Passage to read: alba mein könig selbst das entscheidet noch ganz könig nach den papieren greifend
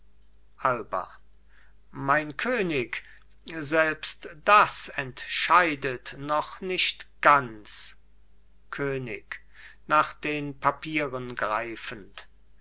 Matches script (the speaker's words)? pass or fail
fail